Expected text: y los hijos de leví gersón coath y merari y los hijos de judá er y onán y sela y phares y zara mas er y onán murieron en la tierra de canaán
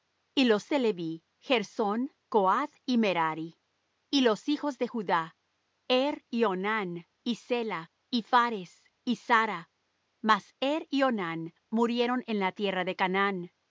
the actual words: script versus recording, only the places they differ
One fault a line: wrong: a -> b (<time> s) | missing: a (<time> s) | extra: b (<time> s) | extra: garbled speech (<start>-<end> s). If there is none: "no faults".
missing: hijos (0.7 s)